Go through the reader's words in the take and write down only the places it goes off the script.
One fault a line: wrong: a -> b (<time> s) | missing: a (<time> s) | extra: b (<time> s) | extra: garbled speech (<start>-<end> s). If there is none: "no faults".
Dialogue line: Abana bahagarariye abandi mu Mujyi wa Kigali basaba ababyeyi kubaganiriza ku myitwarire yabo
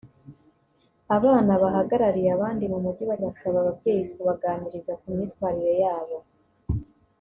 missing: Kigali (3.2 s)